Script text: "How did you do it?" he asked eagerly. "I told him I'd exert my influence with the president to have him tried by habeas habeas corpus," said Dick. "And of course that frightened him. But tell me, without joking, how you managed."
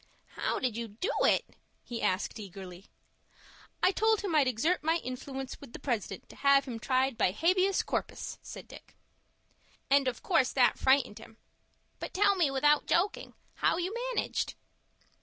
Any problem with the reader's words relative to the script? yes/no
yes